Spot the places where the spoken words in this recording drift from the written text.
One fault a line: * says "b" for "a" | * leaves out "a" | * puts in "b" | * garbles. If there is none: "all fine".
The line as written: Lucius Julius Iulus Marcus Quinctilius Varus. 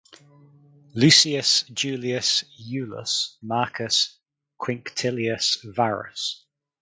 all fine